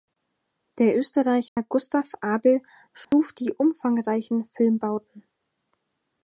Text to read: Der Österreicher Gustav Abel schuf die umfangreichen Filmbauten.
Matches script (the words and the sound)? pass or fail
fail